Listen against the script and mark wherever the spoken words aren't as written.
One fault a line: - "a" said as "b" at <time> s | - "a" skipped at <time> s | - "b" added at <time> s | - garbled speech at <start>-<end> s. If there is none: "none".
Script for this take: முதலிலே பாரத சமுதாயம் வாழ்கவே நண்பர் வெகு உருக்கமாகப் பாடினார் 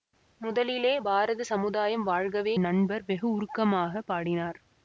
none